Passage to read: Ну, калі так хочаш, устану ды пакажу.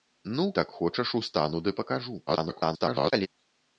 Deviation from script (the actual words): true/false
true